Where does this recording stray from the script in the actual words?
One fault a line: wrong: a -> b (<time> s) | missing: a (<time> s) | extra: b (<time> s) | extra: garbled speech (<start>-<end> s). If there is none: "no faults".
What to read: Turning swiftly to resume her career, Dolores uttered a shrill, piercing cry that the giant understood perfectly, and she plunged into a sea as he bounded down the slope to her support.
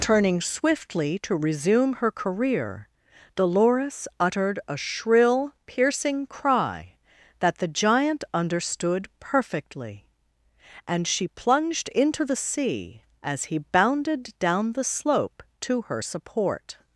wrong: a -> the (12.2 s)